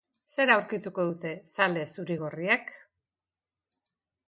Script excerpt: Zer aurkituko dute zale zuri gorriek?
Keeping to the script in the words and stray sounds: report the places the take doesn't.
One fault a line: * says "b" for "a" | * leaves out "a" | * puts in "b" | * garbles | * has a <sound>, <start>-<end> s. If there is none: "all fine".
all fine